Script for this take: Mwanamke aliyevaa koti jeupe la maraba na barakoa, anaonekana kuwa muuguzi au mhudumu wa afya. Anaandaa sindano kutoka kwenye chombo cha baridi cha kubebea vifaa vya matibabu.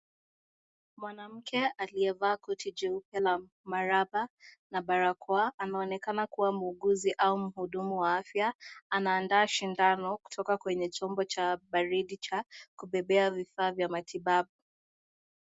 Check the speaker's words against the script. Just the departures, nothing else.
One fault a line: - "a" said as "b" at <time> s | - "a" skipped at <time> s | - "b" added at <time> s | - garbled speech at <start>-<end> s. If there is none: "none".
none